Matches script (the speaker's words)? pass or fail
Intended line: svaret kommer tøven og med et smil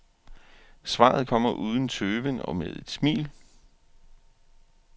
fail